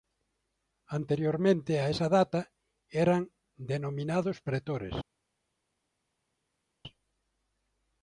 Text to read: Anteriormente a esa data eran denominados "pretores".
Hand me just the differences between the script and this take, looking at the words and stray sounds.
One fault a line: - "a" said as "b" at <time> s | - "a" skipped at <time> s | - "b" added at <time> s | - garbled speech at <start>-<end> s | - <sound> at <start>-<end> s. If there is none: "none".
none